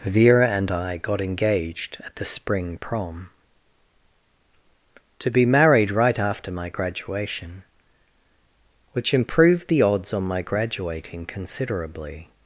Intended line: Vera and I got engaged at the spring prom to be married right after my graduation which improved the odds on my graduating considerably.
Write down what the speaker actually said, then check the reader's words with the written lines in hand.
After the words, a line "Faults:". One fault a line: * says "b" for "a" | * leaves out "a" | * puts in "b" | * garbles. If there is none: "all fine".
Vera and I got engaged at the spring prom to be married right after my graduation which improved the odds on my graduating considerably.
Faults:
all fine